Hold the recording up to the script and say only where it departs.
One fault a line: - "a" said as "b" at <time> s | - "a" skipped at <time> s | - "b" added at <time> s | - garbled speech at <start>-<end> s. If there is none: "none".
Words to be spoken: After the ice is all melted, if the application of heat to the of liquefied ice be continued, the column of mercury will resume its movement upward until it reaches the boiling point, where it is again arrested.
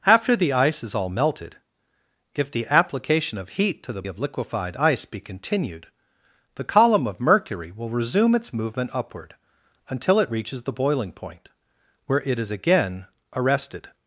none